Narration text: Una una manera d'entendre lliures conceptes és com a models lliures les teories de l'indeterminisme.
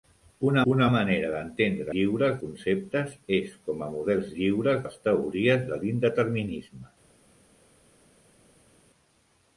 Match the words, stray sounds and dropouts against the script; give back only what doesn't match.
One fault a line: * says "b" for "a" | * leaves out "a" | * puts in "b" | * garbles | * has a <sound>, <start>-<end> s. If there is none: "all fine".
all fine